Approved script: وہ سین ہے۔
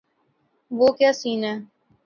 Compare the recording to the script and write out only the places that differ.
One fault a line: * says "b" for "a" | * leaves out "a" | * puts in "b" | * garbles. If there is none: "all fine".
* puts in "کیا"